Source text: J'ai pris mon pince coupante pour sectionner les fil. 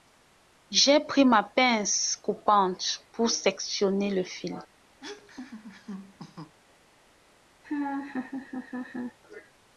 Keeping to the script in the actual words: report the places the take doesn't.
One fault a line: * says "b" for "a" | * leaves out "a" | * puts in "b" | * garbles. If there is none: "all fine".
* says "ma" for "mon"
* says "le" for "les"